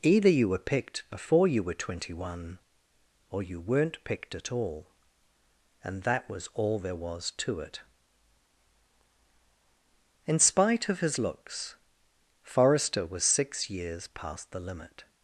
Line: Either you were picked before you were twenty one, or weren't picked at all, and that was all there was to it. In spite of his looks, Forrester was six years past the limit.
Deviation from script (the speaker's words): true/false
true